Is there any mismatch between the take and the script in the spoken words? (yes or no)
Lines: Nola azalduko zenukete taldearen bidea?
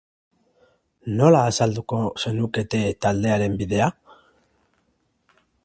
no